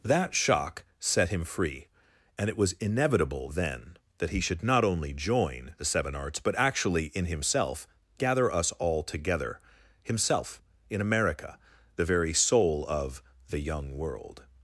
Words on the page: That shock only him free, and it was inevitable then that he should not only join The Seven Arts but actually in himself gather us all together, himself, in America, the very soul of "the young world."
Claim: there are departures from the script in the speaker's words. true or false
true